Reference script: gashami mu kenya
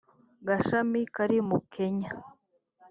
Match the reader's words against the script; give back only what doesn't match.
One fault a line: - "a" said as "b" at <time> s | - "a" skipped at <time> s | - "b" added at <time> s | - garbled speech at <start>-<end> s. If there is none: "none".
- "kari" added at 1.1 s